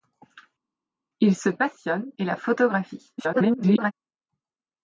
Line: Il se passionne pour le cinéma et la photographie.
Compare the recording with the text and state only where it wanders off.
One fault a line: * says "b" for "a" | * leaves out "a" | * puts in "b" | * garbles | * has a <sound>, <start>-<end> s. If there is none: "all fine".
* leaves out "pour le cinéma"
* garbles